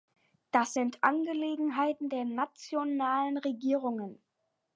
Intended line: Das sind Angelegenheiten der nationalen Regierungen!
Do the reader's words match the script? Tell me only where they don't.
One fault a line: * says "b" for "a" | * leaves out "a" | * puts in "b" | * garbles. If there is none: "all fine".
all fine